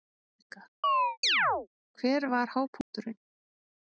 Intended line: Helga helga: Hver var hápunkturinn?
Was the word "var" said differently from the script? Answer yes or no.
no